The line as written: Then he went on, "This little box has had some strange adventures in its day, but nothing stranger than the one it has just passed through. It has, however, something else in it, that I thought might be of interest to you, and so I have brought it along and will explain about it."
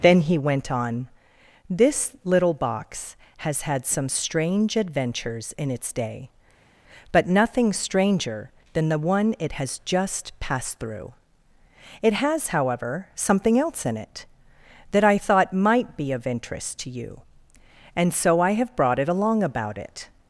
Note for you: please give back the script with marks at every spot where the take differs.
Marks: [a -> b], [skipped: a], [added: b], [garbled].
Then he went on, "This little box has had some strange adventures in its day, but nothing stranger than the one it has just passed through. It has, however, something else in it, that I thought might be of interest to you, and so I have brought it along [skipped: and will explain] about it."